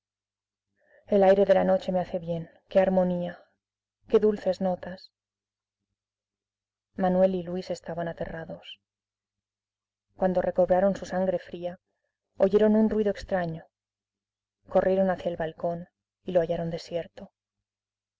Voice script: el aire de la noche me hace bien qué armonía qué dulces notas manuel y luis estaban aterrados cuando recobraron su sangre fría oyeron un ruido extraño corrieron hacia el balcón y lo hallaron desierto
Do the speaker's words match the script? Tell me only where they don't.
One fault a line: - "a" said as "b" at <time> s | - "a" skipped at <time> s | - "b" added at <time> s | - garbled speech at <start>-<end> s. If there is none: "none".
none